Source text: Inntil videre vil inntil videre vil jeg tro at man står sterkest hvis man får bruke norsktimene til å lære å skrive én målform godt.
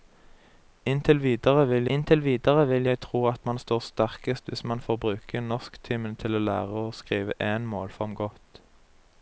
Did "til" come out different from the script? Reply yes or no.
no